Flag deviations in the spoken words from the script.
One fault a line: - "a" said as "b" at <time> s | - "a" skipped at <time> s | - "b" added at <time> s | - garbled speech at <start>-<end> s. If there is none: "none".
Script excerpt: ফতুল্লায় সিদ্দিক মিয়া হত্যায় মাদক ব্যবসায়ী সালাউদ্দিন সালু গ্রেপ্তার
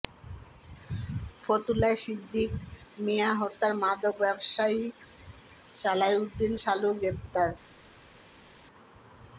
none